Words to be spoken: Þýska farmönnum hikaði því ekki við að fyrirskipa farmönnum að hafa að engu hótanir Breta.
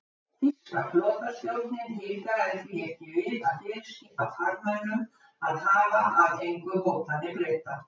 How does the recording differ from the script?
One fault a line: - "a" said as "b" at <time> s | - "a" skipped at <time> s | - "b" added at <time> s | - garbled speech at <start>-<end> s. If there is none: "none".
- "farmönnum" said as "flotastjórnin" at 0.9 s